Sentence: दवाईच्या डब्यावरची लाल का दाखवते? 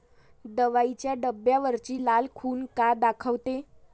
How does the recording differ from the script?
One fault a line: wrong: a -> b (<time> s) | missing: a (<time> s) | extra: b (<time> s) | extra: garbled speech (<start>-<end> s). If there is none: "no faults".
extra: खून (2.4 s)